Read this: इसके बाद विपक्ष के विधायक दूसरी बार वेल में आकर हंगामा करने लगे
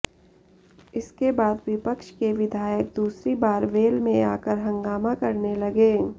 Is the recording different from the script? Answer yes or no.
no